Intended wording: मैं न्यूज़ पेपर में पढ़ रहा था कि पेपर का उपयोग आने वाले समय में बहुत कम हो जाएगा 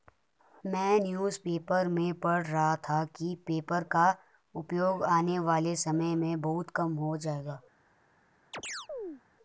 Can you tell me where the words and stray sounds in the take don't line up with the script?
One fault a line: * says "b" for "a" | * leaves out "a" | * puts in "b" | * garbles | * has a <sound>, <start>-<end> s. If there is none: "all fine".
* has a chirp, 8.5-9.2 s